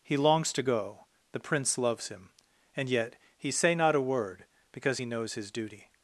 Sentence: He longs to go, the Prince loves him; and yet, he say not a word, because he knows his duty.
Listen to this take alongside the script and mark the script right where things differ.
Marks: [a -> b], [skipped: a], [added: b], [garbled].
He longs to go, the Prince loves him; and yet, he say not a word, because he knows his duty.